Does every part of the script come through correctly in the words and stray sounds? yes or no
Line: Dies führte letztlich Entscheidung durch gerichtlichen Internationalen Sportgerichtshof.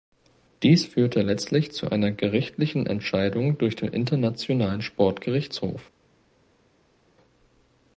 no